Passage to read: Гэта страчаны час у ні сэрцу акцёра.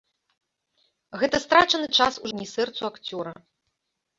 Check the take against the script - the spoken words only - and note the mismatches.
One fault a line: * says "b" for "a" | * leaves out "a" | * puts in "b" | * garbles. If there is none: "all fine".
all fine